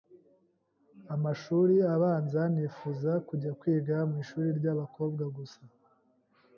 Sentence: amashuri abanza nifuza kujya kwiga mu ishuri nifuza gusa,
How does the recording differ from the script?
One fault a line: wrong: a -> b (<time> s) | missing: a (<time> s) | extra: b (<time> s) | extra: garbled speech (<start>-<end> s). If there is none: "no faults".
wrong: nifuza -> ry'abakobwa (4.6 s)